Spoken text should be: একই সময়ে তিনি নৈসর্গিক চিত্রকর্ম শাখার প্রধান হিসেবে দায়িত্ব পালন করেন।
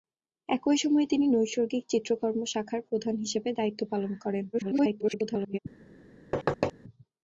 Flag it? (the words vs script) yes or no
yes